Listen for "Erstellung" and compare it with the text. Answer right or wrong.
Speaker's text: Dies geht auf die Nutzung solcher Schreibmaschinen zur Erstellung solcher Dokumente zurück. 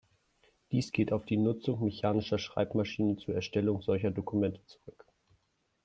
right